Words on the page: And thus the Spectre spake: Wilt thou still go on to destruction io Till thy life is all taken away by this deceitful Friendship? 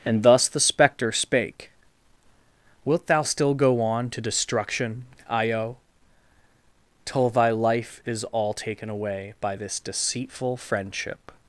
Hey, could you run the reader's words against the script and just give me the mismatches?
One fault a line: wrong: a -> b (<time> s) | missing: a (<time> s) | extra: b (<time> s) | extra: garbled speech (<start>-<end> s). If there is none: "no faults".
no faults